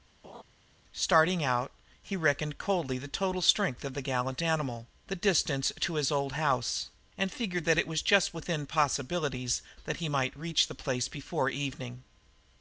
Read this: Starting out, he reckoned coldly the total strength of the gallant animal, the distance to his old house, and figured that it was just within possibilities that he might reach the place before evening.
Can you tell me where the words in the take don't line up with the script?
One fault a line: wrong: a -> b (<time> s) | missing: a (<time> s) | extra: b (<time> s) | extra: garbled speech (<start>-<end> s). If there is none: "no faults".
no faults